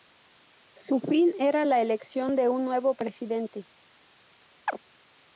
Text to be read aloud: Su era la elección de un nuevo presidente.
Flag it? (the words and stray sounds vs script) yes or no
yes